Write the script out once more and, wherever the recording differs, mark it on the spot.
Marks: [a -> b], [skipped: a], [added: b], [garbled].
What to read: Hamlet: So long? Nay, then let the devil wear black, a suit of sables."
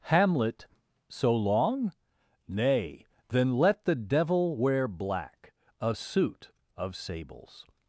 Hamlet: So long? Nay, then let the devil wear black, a suit of sables."